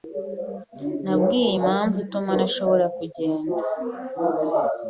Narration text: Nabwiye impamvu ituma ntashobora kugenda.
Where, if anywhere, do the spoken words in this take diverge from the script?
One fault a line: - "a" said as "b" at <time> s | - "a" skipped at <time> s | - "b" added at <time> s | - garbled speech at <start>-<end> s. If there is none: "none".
none